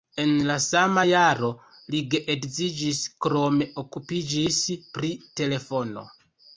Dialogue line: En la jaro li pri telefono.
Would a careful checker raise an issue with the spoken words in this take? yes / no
yes